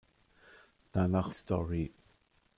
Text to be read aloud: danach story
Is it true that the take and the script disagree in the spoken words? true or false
false